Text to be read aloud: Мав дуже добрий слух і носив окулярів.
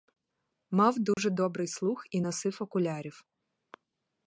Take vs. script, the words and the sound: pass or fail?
fail